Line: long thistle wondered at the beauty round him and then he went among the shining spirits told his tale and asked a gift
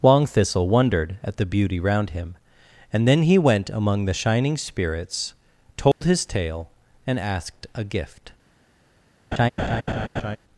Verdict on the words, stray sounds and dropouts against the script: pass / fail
fail